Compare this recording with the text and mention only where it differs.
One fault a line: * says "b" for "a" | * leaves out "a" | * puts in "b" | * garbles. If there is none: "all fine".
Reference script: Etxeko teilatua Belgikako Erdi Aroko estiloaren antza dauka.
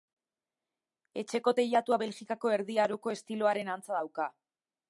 all fine